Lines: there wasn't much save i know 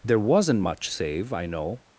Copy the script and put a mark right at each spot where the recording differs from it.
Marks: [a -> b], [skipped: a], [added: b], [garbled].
there wasn't much save i know